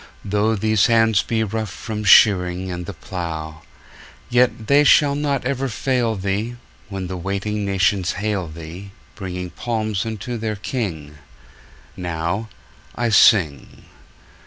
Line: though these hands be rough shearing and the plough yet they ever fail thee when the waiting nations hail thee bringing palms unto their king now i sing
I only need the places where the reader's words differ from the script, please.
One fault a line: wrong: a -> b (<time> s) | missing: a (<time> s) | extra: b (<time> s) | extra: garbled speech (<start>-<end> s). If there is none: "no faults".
extra: from (1.7 s)
extra: shall not (4.8 s)